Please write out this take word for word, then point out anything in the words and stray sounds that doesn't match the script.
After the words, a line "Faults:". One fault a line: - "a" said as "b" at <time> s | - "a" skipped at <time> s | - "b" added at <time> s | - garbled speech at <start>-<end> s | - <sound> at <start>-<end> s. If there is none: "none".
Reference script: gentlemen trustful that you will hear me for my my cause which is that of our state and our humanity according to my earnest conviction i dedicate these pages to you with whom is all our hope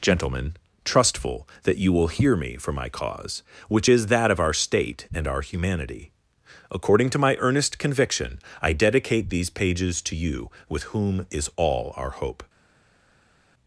gentlemen trustful that you will hear me for my cause which is that of our state and our humanity according to my earnest conviction i dedicate these pages to you with whom is all our hope
Faults:
- "my" skipped at 2.9 s